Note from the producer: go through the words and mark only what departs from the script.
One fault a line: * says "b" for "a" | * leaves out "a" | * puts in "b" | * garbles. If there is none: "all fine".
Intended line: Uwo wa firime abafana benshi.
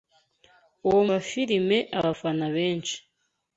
all fine